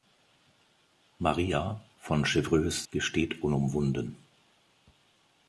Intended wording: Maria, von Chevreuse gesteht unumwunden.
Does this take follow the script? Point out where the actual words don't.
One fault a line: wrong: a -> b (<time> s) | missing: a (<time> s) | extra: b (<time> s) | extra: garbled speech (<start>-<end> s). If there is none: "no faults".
no faults